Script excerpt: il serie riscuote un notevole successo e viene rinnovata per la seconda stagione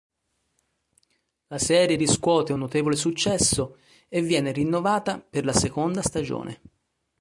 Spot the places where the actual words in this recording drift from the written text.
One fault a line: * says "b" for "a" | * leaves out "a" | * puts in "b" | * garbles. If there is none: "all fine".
* says "la" for "il"